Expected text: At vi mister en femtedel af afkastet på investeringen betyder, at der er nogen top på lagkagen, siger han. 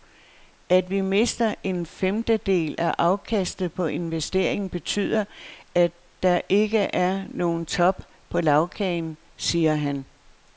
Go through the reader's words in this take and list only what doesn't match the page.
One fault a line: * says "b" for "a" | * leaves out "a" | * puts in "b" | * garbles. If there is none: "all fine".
* puts in "ikke"